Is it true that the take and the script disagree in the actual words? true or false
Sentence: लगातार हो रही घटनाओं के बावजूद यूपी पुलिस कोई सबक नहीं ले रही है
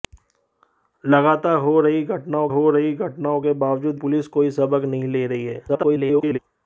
true